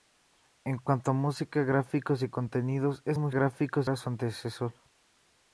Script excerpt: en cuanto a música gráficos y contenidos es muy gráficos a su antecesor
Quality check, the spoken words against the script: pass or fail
pass